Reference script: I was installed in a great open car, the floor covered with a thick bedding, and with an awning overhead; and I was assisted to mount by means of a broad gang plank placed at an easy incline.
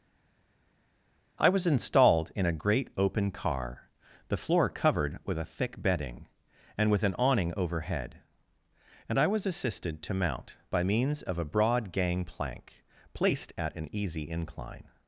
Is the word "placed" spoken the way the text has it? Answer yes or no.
yes